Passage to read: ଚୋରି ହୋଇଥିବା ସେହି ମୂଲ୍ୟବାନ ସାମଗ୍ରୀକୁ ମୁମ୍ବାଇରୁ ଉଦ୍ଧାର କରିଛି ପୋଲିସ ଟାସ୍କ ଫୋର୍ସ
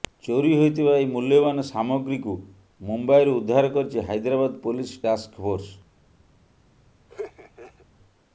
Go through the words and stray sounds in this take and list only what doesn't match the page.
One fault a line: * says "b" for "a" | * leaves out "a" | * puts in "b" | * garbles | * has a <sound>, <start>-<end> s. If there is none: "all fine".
* says "ଏହି" for "ସେହି"
* puts in "ହାଇଦ୍ରାବାଦ"
* has a laugh, 7.1-7.9 s